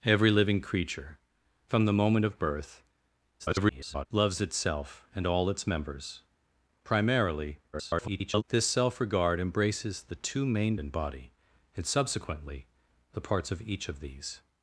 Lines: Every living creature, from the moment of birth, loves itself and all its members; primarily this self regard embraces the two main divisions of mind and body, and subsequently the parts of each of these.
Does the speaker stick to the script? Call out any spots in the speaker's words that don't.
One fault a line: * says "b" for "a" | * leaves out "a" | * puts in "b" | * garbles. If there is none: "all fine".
* garbles
* garbles
* leaves out "divisions of mind"